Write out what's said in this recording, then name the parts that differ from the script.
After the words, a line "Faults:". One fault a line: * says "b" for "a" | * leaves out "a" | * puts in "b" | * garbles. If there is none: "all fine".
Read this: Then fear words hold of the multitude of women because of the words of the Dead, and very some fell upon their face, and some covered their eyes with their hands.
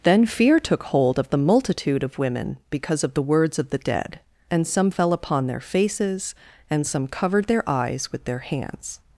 Then fear took hold of the multitude of women because of the words of the Dead, and some fell upon their faces, and some covered their eyes with their hands.
Faults:
* says "took" for "words"
* leaves out "very"
* says "faces" for "face"